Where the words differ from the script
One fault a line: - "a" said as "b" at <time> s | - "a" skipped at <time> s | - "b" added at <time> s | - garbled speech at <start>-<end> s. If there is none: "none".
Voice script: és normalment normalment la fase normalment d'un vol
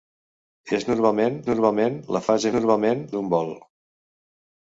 none